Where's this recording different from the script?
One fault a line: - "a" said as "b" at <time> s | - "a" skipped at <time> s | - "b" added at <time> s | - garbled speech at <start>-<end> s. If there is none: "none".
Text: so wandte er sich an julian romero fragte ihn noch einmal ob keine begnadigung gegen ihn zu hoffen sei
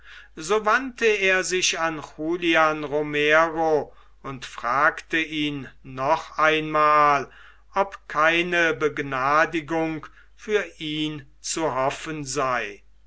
- "und" added at 4.2 s
- "gegen" said as "für" at 10.3 s